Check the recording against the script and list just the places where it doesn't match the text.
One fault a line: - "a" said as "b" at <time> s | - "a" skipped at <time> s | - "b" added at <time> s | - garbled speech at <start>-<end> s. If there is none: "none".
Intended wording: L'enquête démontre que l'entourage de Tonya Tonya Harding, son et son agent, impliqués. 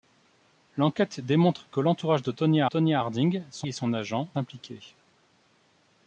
none